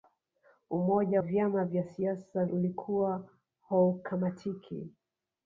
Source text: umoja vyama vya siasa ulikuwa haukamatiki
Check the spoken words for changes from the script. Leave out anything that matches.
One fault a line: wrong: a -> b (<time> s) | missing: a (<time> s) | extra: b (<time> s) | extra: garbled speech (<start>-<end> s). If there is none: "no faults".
no faults